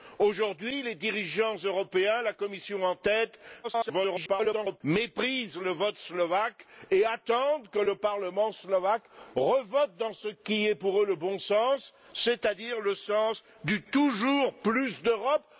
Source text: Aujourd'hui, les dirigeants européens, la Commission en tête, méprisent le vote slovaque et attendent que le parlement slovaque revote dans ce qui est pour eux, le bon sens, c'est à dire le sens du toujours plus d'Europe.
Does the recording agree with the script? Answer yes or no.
no